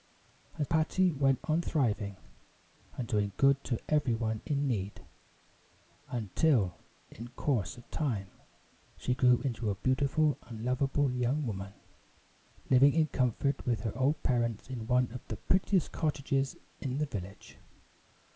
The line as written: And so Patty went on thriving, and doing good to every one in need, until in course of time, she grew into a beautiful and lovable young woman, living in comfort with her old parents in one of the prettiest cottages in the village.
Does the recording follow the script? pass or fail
fail